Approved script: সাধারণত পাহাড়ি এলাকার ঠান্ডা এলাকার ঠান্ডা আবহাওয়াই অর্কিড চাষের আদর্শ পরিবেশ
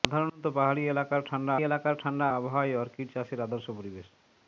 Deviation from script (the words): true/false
false